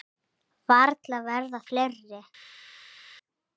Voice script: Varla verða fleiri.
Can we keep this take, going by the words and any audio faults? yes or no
yes